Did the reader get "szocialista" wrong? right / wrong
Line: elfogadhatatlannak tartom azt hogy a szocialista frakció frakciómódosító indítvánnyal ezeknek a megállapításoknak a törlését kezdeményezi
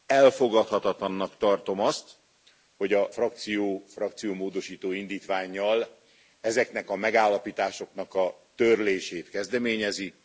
wrong